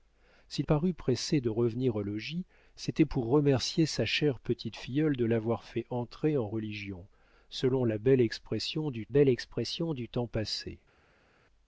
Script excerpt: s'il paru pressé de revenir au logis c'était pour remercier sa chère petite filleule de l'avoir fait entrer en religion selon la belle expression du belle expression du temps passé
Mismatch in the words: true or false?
false